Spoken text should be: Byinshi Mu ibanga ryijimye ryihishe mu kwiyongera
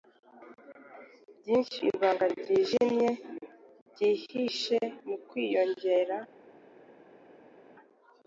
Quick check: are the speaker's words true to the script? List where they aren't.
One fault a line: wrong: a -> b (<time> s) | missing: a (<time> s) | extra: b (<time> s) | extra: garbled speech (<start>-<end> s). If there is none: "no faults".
missing: Mu (1.8 s)